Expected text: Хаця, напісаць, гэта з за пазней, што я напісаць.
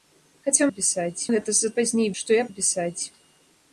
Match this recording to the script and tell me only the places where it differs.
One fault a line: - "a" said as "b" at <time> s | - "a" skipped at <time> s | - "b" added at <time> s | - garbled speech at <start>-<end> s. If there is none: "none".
none